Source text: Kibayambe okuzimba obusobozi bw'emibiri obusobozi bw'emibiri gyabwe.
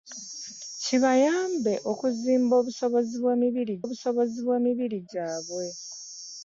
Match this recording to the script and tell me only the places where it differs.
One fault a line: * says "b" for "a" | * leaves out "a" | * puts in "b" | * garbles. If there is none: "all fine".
all fine